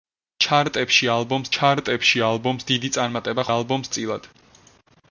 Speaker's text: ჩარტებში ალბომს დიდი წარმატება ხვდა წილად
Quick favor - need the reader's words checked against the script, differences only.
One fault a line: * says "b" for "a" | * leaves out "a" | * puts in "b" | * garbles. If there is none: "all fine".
* puts in "ჩარტებში ალბომს"
* says "ალბომს" for "ხვდა"